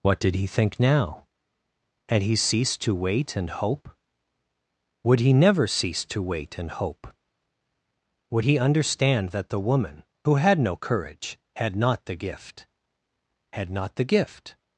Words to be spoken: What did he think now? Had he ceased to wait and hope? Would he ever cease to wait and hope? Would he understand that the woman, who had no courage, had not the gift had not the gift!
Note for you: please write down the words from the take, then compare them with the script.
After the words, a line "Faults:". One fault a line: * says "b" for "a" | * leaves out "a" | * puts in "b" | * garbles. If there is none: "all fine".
What did he think now? Had he ceased to wait and hope? Would he never cease to wait and hope? Would he understand that the woman, who had no courage, had not the gift had not the gift!
Faults:
* says "never" for "ever"